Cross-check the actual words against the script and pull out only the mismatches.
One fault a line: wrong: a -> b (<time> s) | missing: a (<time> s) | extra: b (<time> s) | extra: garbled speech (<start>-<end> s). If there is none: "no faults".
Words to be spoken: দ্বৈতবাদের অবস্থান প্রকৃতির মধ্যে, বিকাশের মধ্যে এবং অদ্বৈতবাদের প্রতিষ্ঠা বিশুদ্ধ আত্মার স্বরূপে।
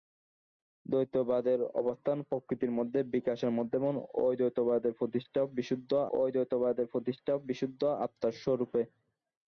extra: অদ্বৈতবাদের প্রতিষ্ঠা বিশুদ্ধ (6.2 s)